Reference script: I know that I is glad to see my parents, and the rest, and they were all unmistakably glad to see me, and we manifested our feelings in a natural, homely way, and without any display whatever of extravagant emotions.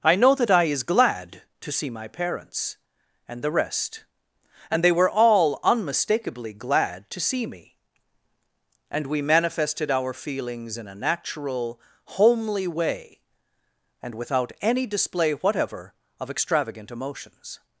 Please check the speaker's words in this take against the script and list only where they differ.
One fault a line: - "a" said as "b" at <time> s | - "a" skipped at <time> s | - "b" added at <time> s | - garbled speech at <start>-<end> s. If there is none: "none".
none